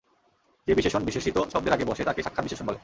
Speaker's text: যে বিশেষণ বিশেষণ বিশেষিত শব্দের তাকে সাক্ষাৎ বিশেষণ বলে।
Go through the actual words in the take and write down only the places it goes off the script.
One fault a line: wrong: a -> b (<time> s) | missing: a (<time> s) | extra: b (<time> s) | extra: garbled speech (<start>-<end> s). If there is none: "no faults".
missing: বিশেষণ (1.0 s)
extra: আগে বসে (1.8 s)